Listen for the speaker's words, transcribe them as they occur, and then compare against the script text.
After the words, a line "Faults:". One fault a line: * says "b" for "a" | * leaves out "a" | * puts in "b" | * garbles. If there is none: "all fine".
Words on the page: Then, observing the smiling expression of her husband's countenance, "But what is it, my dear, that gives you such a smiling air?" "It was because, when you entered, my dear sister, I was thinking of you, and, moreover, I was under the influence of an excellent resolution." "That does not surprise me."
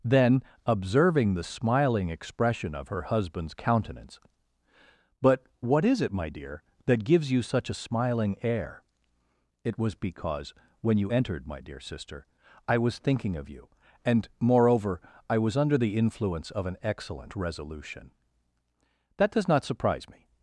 Then, observing the smiling expression of her husband's countenance, "But what is it, my dear, that gives you such a smiling air?" "It was because, when you entered, my dear sister, I was thinking of you, and, moreover, I was under the influence of an excellent resolution." "That does not surprise me."
Faults:
all fine